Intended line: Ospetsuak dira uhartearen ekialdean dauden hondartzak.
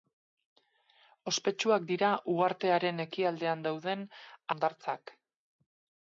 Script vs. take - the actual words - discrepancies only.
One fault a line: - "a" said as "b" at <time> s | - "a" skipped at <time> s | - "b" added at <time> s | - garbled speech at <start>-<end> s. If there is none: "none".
none